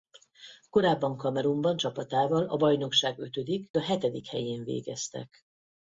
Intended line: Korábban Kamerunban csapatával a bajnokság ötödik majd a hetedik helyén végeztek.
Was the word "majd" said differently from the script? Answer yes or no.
yes